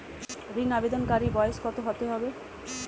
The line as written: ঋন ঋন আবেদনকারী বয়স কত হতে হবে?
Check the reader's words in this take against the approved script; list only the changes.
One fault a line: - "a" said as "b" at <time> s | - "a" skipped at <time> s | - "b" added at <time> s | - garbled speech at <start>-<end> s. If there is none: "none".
- "ঋন" skipped at 0.7 s